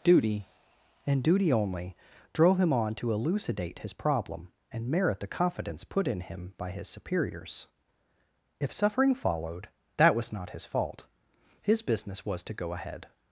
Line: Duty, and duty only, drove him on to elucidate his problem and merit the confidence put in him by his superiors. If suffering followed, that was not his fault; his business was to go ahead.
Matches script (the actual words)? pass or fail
pass